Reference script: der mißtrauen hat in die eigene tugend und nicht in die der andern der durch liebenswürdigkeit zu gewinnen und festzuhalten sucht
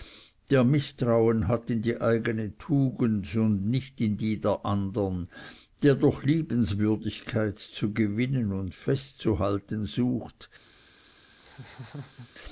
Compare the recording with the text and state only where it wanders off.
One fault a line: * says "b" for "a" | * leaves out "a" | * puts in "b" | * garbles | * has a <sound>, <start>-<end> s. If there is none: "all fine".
* has a laugh, 11.4-12.3 s